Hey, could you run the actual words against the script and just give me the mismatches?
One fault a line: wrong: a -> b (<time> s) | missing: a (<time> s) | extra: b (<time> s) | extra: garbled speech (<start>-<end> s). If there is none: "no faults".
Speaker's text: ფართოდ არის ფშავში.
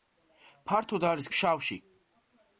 no faults